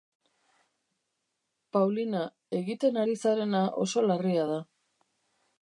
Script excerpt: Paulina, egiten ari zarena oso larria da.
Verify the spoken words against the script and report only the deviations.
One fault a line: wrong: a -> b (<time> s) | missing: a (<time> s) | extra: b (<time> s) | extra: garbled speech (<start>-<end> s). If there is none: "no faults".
no faults